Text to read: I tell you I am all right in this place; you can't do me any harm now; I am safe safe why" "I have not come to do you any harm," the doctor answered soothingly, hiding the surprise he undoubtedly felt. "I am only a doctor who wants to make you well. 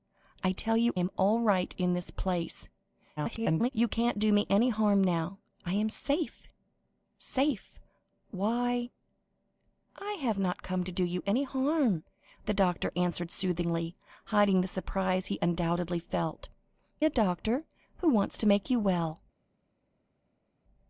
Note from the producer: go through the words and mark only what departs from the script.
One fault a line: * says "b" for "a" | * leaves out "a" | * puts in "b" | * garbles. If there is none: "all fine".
* leaves out "I"
* garbles
* leaves out "I am only"